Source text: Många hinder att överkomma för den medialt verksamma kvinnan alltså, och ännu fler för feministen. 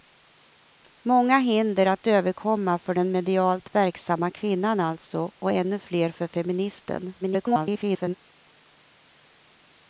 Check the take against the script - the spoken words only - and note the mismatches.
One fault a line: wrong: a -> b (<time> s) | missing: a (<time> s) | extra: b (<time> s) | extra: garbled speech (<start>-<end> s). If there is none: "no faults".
extra: garbled speech (7.2-8.1 s)